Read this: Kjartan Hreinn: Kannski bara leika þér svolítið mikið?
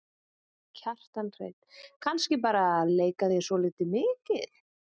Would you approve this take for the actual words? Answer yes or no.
yes